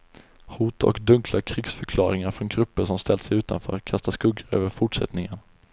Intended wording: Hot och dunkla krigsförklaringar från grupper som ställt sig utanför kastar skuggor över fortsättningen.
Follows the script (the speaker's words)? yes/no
yes